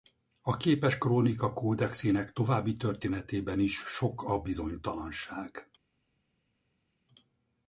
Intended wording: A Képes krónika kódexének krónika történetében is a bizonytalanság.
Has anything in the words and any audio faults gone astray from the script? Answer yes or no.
yes